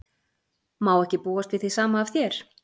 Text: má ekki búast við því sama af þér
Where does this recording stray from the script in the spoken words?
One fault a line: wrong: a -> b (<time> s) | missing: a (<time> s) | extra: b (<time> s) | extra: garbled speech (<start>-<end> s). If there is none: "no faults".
no faults